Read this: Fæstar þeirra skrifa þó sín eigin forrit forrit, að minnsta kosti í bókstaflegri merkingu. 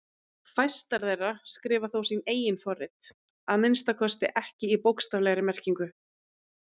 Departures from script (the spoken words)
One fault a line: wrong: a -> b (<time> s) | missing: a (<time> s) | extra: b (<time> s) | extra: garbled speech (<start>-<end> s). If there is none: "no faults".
missing: forrit (3.1 s)
extra: ekki (4.5 s)